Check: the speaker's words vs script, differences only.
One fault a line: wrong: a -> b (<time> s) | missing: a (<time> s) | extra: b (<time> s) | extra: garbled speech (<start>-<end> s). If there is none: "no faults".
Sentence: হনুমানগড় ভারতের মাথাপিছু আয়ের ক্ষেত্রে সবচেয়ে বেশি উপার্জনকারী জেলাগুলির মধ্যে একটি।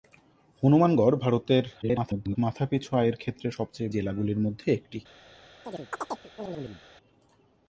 extra: garbled speech (1.8-2.4 s)
missing: বেশি উপার্জনকারী (3.9 s)